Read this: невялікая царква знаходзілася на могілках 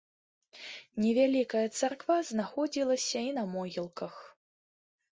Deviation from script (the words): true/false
true